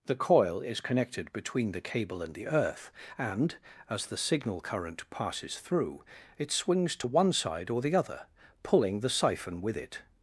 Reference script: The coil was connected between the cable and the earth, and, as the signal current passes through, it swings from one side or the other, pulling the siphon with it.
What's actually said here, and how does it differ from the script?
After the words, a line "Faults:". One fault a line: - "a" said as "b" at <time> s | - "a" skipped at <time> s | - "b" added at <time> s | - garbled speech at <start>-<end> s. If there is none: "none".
The coil is connected between the cable and the earth, and, as the signal current passes through, it swings to one side or the other, pulling the siphon with it.
Faults:
- "was" said as "is" at 0.6 s
- "from" said as "to" at 7.0 s